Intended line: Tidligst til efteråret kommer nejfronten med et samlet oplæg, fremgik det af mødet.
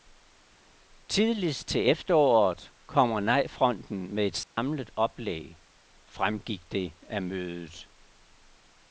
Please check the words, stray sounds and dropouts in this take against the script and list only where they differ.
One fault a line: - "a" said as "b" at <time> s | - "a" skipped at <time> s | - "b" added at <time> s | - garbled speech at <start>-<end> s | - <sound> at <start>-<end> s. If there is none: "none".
- dropout at 4.4-4.6 s